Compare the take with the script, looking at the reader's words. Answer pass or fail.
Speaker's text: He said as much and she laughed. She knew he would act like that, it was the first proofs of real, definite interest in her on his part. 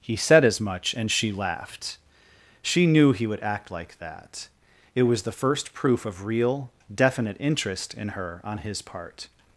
fail